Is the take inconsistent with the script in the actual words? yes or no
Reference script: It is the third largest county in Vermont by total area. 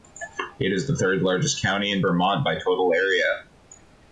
no